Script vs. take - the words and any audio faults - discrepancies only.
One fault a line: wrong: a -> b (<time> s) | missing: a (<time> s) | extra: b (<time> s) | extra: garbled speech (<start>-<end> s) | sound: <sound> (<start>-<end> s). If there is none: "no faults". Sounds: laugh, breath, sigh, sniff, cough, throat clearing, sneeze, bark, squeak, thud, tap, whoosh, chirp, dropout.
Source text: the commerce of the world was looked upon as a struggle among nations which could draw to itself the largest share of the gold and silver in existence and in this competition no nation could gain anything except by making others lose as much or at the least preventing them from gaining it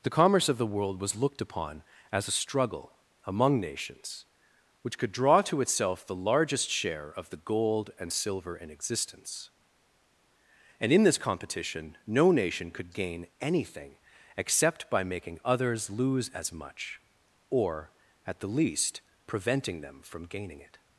no faults